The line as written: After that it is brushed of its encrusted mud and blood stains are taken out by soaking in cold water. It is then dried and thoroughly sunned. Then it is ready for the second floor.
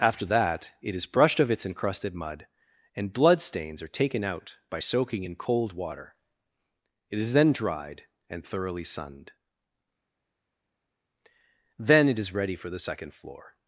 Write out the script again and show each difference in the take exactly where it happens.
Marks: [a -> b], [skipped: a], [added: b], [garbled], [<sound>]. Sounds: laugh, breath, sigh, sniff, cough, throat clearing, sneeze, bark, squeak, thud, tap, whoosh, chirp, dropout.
After that it is brushed of its encrusted mud and blood stains are taken out by soaking in cold water. It is then dried and thoroughly sunned. Then it is ready for the second floor.